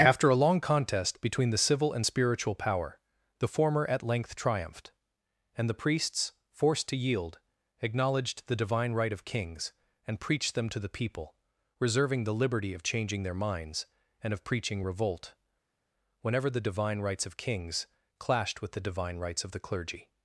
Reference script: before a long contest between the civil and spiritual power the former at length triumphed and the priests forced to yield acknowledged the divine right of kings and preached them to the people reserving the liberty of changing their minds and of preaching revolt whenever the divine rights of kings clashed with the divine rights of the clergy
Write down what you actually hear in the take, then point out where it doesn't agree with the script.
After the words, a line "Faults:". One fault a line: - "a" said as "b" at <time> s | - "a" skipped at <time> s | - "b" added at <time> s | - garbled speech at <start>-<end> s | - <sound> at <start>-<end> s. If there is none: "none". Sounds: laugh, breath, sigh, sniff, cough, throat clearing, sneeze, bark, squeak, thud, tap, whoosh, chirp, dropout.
after a long contest between the civil and spiritual power the former at length triumphed and the priests forced to yield acknowledged the divine right of kings and preached them to the people reserving the liberty of changing their minds and of preaching revolt whenever the divine rights of kings clashed with the divine rights of the clergy
Faults:
- "before" said as "after" at 0.0 s